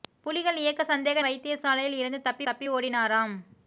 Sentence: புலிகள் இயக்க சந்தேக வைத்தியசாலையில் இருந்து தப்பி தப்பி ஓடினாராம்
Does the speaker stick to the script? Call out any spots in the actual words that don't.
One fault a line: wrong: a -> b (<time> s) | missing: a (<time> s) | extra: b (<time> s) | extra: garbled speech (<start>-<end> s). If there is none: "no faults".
no faults